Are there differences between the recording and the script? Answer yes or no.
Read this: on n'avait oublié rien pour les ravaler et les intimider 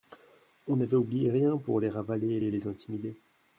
yes